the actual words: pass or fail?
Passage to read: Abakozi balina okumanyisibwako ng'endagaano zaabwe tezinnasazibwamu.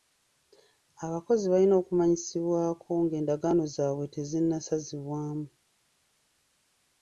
pass